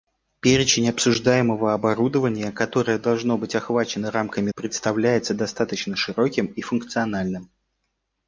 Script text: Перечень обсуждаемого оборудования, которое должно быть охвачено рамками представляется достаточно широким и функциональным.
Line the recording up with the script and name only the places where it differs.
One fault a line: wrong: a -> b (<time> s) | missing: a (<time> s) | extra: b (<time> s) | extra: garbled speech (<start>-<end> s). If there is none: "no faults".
no faults